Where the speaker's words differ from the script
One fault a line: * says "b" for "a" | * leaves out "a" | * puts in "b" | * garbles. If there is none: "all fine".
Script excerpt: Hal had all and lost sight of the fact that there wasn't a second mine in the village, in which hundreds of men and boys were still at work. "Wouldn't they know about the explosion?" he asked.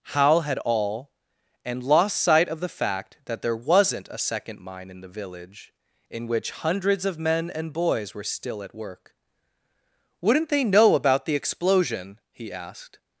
all fine